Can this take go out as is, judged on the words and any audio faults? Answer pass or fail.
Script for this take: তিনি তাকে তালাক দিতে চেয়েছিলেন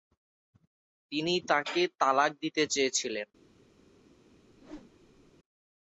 fail